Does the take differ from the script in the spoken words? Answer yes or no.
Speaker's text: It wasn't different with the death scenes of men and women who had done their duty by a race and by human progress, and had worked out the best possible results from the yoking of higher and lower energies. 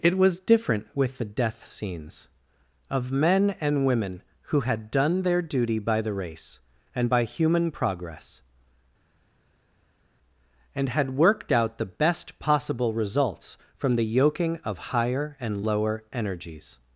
yes